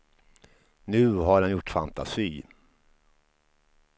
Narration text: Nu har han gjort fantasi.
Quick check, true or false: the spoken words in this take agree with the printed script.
true